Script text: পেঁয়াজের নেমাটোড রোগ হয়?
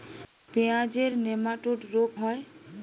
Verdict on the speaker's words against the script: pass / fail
pass